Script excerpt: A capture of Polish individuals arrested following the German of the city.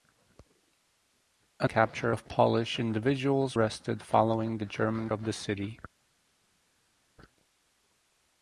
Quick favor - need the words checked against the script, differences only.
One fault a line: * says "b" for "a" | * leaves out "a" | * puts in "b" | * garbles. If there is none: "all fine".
all fine